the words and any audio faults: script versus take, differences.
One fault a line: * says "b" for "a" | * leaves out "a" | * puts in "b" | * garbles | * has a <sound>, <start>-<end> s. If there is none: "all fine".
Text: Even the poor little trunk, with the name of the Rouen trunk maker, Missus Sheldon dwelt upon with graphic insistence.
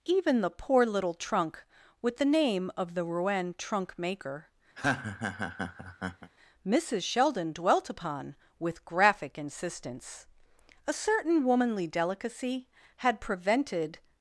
* has a laugh, 4.8-6.3 s
* puts in "A certain womanly delicacy had prevented"